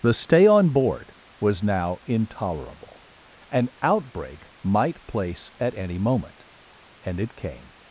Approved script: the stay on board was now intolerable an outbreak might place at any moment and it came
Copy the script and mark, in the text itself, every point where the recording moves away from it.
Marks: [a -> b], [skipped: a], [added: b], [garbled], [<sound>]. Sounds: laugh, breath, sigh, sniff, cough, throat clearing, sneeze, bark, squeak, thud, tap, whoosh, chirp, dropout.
the stay on board was now intolerable an outbreak might place at any moment and it came